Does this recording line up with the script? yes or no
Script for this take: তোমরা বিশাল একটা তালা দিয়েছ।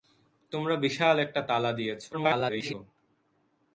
no